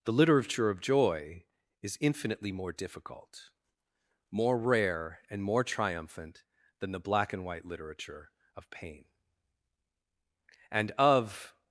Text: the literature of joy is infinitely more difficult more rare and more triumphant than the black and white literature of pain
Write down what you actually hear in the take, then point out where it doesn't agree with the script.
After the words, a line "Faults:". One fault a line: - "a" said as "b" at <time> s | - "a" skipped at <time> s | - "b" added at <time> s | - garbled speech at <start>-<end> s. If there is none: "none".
the literature of joy is infinitely more difficult more rare and more triumphant than the black and white literature of pain and of
Faults:
- "and of" added at 10.7 s